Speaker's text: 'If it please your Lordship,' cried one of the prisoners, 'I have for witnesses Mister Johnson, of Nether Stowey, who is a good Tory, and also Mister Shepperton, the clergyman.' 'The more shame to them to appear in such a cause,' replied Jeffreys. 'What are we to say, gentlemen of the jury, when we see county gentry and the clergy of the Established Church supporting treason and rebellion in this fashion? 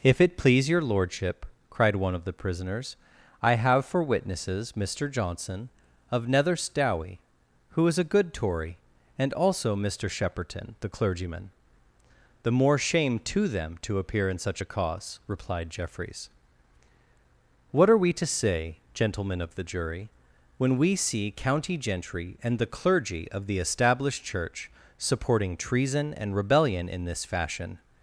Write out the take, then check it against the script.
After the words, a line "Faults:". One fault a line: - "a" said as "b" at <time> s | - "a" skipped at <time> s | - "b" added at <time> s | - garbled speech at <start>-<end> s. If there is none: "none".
'If it please your Lordship,' cried one of the prisoners, 'I have for witnesses Mister Johnson, of Nether Stowey, who is a good Tory, and also Mister Shepperton, the clergyman.' 'The more shame to them to appear in such a cause,' replied Jeffreys. 'What are we to say, gentlemen of the jury, when we see county gentry and the clergy of the Established Church supporting treason and rebellion in this fashion?
Faults:
none